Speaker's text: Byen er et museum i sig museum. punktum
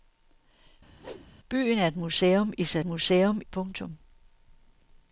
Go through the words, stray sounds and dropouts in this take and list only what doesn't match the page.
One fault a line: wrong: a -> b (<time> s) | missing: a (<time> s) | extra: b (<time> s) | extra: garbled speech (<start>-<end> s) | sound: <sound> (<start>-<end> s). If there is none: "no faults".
sound: whoosh (1.0-1.3 s)